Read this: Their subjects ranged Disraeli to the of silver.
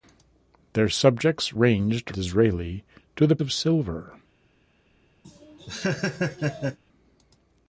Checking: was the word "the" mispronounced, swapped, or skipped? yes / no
no